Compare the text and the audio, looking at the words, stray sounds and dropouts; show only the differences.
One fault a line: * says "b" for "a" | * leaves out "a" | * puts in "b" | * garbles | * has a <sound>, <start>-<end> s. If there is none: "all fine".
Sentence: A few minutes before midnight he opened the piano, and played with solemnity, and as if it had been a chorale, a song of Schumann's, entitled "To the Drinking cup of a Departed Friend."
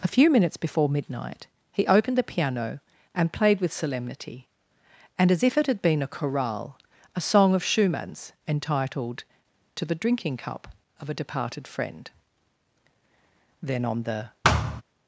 * puts in "Then on the"
* has a thud, 14.4-14.8 s